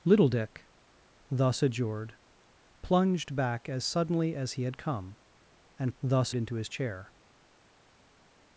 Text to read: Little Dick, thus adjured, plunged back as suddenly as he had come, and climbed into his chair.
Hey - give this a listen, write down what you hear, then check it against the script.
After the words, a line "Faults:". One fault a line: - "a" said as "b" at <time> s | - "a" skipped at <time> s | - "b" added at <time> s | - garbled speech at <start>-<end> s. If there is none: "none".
Little Dick, thus adjured, plunged back as suddenly as he had come, and thus into his chair.
Faults:
- "climbed" said as "thus" at 6.0 s